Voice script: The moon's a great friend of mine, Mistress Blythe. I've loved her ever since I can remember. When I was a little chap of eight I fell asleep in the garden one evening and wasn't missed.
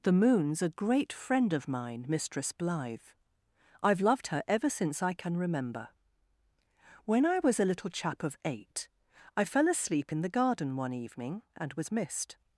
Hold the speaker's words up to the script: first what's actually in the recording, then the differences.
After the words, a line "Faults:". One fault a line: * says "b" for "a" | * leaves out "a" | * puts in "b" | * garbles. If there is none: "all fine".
The moon's a great friend of mine, Mistress Blythe. I've loved her ever since I can remember. When I was a little chap of eight I fell asleep in the garden one evening and was missed.
Faults:
* says "was" for "wasn't"